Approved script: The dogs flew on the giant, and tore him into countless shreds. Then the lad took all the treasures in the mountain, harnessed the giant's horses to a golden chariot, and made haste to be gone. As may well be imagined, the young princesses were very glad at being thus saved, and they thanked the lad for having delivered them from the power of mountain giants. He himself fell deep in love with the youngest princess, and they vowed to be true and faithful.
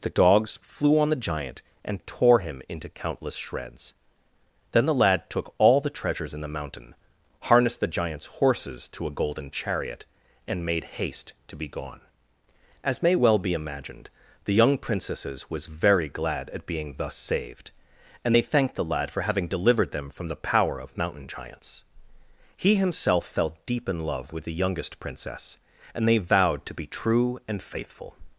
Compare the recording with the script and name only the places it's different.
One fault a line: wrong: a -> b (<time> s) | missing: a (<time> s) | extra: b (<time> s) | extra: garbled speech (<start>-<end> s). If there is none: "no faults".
wrong: were -> was (15.5 s)